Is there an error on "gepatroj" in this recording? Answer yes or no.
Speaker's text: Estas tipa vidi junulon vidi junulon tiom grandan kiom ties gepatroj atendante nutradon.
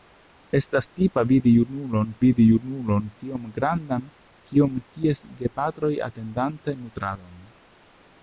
no